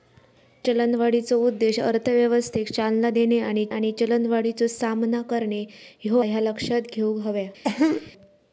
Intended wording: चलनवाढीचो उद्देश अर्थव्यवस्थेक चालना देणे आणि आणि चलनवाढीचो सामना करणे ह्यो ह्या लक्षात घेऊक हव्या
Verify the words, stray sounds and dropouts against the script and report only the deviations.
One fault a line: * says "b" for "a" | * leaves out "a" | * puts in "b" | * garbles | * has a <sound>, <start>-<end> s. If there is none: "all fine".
* has a cough, 7.6-8.1 s